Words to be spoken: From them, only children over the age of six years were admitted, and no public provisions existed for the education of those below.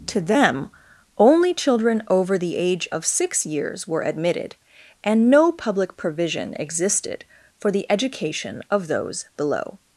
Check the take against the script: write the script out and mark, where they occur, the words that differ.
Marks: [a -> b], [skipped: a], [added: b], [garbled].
[From -> To] them, only children over the age of six years were admitted, and no public [provisions -> provision] existed for the education of those below.